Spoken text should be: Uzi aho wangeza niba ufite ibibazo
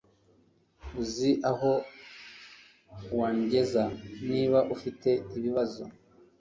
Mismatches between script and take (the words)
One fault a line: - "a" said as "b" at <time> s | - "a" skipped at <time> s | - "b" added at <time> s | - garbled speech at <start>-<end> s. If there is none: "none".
none